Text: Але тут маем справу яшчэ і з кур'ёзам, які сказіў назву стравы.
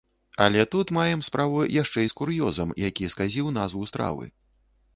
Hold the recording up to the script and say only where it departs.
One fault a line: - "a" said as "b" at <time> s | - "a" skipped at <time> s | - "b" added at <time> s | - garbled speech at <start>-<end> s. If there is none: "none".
none